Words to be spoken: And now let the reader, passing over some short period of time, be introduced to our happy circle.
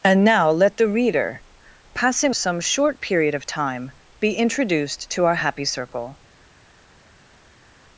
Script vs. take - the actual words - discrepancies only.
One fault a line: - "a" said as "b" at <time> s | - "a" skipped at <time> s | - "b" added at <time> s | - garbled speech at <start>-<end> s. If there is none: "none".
- "over" skipped at 2.3 s